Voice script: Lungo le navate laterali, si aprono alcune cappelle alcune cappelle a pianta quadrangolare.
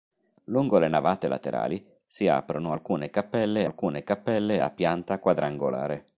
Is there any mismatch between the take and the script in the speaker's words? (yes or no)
no